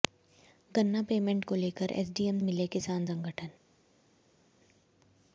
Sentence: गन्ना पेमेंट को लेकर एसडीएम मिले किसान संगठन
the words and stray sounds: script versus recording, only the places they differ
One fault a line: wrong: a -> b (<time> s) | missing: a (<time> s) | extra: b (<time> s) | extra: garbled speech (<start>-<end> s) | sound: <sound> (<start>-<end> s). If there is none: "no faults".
no faults